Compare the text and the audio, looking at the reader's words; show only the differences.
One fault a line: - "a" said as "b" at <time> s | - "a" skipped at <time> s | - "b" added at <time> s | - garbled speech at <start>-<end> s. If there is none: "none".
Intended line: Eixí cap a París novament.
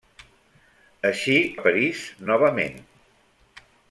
- "cap" skipped at 1.4 s